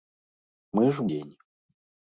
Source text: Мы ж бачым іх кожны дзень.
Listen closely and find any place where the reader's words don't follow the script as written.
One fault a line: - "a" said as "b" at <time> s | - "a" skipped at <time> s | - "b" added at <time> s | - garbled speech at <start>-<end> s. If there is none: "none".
- "бачым іх кожны" skipped at 1.0 s